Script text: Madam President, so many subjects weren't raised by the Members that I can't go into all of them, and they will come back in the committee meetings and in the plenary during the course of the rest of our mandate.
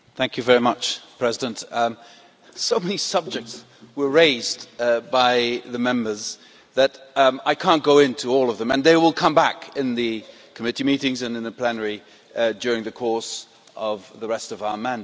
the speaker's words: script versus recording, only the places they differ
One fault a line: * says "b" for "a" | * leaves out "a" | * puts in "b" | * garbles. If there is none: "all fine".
* says "were" for "weren't"